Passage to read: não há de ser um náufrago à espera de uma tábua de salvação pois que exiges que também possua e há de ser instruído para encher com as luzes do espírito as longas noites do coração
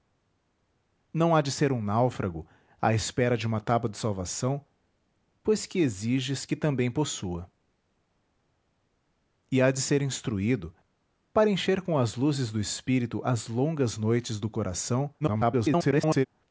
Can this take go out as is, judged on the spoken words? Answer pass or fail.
fail